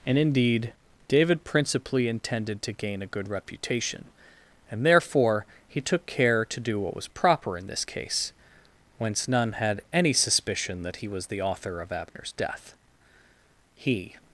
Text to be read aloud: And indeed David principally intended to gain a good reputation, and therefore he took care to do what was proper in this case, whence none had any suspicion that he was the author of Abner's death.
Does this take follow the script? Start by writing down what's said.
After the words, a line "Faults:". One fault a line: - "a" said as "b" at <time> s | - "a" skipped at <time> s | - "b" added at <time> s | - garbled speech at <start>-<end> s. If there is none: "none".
And indeed David principally intended to gain a good reputation, and therefore he took care to do what was proper in this case, whence none had any suspicion that he was the author of Abner's death. He
Faults:
- "He" added at 13.8 s